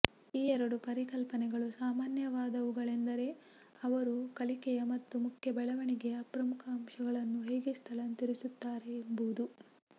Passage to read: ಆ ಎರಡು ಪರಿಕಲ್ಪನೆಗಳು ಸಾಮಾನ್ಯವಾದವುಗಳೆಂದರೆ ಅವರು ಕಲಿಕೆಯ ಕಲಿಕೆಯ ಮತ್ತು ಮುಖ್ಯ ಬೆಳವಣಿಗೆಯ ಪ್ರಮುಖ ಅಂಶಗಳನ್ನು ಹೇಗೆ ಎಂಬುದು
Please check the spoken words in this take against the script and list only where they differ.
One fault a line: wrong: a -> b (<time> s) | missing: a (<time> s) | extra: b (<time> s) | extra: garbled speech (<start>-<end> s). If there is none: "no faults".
wrong: ಆ -> ಈ (0.3 s)
missing: ಕಲಿಕೆಯ (4.8 s)
extra: ಸ್ಥಳಾಂತರಿಸುತ್ತಾರೆ (7.8 s)